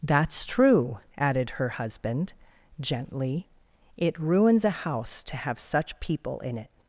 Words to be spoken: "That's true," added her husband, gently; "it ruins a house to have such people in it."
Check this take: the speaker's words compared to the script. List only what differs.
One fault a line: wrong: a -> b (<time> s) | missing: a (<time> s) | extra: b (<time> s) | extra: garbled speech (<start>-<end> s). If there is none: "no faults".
no faults